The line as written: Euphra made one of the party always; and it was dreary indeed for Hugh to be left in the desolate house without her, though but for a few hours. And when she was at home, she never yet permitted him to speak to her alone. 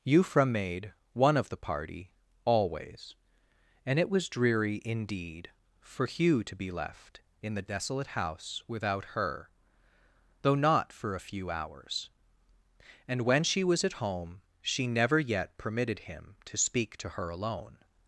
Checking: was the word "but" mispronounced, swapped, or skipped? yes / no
yes